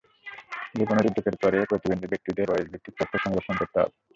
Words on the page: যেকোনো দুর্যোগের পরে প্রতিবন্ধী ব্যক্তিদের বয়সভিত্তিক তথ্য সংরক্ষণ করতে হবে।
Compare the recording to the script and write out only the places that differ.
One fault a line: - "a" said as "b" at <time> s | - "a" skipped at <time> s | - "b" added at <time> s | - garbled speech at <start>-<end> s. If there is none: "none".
none